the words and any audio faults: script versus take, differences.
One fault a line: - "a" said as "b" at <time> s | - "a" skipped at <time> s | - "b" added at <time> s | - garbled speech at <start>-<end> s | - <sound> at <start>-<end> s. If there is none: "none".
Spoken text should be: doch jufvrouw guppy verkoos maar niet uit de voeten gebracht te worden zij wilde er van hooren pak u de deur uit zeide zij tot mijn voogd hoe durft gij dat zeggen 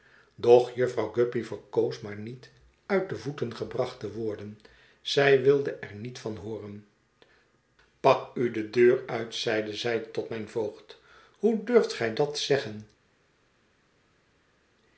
- "niet" added at 6.0 s